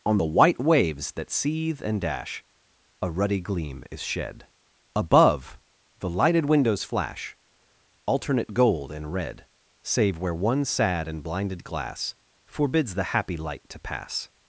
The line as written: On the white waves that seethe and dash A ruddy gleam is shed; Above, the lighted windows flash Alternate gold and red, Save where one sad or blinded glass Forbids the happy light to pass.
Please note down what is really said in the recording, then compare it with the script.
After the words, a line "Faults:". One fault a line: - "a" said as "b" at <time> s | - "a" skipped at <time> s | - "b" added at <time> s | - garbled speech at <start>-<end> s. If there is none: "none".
On the white waves that seethe and dash A ruddy gleam is shed; Above, the lighted windows flash Alternate gold and red, Save where one sad and blinded glass Forbids the happy light to pass.
Faults:
- "or" said as "and" at 11.1 s